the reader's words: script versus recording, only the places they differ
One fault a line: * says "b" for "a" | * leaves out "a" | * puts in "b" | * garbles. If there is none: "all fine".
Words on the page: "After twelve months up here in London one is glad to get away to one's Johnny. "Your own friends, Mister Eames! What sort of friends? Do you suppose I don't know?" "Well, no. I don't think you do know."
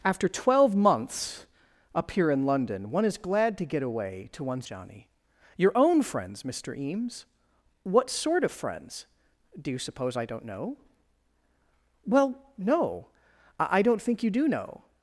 all fine